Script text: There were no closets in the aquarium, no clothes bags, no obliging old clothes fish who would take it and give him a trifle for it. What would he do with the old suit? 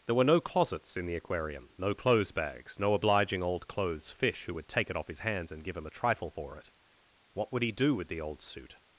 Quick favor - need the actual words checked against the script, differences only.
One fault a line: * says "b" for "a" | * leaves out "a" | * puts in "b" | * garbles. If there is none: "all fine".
* puts in "off his hands"